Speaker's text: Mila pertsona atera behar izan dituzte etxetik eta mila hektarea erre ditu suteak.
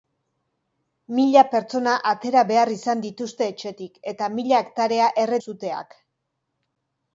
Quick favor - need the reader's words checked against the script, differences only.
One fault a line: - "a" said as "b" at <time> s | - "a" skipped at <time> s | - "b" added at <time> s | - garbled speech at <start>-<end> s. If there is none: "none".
- "ditu" skipped at 5.4 s